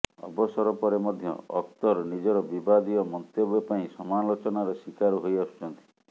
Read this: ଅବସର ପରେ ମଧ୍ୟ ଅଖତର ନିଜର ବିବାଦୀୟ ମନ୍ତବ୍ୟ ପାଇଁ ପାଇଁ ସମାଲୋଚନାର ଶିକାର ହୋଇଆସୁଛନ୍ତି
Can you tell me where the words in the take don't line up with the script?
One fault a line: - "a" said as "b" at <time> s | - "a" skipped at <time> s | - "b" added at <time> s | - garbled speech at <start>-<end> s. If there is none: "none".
- "ପାଇଁ" skipped at 3.9 s